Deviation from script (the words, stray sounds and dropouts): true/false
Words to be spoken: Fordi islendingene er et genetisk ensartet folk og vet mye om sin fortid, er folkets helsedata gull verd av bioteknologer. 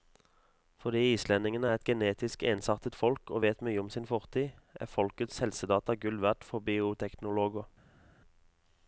true